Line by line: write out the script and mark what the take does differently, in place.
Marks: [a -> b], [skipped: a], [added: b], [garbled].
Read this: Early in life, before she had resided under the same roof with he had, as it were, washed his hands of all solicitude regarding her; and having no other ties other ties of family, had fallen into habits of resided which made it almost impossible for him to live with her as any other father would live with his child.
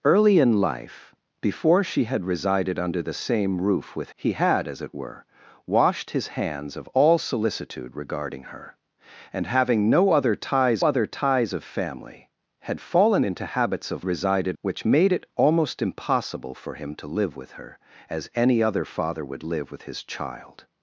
Early in life, before she had resided under the same roof with he had, as it were, washed his hands of all solicitude regarding her; and having no other ties other ties of family, had fallen into habits of resided which made it almost impossible for him to live with her as any other father would live with his child.